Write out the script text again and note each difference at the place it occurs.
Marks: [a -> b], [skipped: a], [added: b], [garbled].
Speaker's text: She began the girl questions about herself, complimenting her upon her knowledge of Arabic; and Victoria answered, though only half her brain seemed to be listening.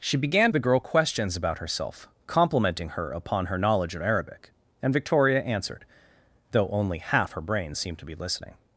She began the girl questions about herself, complimenting her upon her knowledge of Arabic; and Victoria answered, though only half her brain seemed to be listening.